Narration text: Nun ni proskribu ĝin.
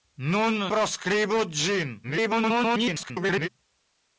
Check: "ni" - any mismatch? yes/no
yes